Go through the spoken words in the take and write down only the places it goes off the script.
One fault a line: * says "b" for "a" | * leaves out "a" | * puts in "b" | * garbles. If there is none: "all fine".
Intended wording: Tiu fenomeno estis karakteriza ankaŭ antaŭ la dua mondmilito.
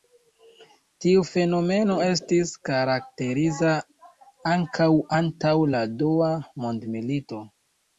all fine